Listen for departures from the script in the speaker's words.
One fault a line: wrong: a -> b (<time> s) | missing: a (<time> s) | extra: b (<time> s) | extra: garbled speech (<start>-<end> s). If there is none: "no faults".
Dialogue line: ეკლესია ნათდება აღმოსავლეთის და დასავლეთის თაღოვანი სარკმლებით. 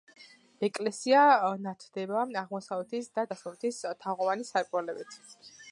no faults